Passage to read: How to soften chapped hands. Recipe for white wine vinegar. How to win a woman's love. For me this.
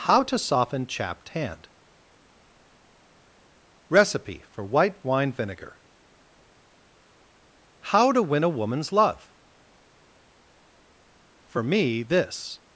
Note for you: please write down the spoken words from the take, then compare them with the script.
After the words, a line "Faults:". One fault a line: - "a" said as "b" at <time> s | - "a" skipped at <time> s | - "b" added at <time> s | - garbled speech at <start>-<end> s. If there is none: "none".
How to soften chapped hand. Recipe for white wine vinegar. How to win a woman's love. For me this.
Faults:
- "hands" said as "hand" at 1.3 s